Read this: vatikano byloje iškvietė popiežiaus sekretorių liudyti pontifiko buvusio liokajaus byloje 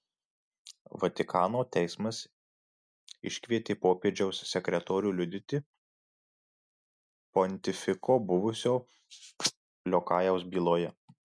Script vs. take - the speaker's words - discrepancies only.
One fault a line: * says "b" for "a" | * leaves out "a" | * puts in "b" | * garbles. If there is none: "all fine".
* says "teismas" for "byloje"